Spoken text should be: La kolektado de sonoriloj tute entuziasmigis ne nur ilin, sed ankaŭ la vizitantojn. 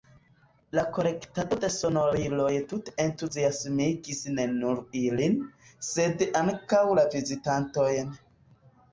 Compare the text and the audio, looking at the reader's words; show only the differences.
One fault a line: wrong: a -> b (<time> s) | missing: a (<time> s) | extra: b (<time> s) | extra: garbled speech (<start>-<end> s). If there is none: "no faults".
no faults